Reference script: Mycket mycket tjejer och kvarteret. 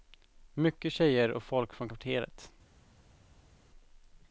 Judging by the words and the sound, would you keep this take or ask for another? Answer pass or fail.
fail